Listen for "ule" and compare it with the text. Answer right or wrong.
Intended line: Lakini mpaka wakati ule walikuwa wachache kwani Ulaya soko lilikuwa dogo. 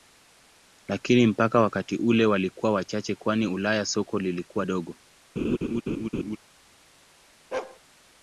right